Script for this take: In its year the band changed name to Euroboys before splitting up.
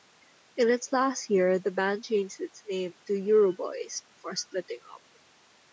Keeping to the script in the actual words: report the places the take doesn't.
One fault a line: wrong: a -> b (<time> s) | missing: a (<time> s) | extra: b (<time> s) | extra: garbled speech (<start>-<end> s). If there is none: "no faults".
extra: last (0.9 s)
extra: its (2.4 s)